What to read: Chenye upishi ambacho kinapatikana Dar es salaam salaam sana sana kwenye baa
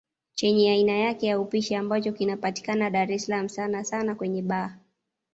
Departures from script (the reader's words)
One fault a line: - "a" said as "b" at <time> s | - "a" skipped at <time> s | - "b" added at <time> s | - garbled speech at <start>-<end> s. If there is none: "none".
- "aina yake ya" added at 0.7 s
- "salaam" skipped at 3.5 s